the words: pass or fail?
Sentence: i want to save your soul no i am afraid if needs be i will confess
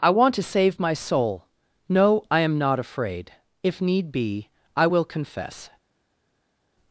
fail